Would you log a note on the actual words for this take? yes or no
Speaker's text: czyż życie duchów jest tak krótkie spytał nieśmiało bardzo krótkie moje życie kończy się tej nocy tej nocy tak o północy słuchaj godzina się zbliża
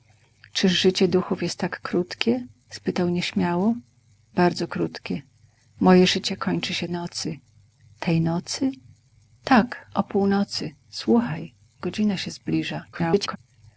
yes